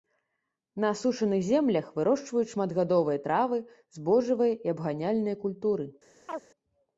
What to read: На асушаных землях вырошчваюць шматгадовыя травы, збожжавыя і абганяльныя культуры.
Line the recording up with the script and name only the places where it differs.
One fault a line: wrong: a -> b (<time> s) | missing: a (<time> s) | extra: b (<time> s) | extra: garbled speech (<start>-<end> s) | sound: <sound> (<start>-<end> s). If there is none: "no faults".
sound: chirp (6.3-6.4 s)